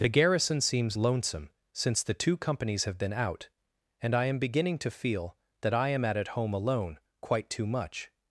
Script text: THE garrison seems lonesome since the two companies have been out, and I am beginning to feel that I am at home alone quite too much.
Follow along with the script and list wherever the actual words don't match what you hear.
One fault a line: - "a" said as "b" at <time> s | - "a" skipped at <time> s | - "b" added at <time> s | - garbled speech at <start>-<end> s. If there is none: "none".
- "at" added at 6.2 s